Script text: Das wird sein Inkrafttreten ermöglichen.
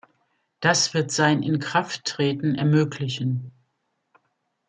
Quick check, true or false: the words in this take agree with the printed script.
true